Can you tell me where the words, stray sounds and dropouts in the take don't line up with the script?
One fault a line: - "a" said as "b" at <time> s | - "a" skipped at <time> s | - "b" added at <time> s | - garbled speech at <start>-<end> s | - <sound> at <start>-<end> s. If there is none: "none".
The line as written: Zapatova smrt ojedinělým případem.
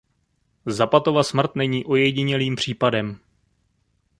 - "není" added at 1.6 s